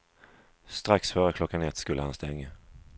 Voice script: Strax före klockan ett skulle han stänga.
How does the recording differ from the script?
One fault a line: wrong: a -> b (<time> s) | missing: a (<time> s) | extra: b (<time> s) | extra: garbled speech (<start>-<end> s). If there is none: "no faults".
no faults